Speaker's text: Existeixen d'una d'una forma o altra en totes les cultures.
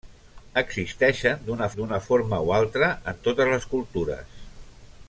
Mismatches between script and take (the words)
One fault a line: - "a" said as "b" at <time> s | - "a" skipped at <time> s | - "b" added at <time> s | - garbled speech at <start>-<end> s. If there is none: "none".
none